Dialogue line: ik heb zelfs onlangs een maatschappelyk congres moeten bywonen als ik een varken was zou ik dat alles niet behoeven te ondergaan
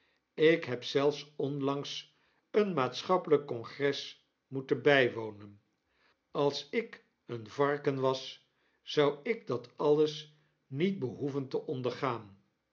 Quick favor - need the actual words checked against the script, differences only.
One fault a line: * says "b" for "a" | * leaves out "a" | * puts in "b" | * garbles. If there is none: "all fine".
all fine